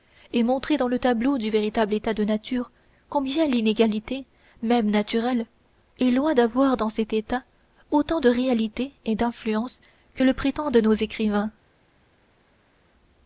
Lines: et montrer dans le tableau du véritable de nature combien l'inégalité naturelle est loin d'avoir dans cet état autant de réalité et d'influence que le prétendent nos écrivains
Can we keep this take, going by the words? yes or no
no